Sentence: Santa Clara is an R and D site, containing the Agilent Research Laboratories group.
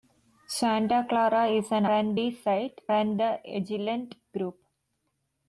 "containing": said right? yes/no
no